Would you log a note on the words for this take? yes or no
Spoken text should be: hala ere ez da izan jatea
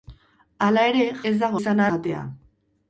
no